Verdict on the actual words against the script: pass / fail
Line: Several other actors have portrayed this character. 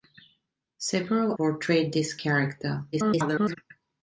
fail